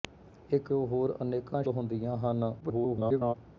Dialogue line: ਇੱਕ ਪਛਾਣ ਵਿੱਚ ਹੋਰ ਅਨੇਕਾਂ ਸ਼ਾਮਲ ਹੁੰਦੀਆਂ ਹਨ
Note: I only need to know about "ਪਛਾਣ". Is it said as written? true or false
false